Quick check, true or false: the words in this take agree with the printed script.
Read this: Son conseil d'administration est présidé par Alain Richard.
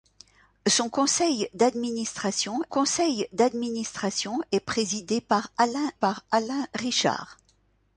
false